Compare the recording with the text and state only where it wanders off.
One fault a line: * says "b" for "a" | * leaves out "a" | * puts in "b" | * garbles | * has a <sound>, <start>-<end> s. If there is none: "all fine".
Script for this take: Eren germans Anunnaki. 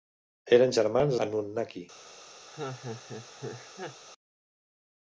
* has a laugh, 2.5-4.0 s